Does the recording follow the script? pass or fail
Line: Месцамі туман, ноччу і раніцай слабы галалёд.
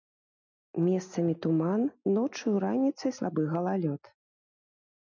pass